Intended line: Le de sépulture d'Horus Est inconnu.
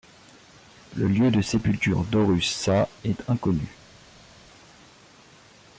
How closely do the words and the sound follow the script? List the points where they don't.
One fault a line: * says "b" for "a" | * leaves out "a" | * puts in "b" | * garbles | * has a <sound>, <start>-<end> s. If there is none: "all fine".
* puts in "lieu"
* puts in "Sa"